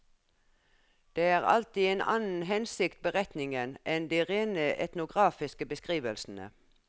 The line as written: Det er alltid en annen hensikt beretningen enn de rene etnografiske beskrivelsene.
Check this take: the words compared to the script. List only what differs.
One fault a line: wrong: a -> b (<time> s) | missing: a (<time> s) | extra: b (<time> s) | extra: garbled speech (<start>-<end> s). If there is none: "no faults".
no faults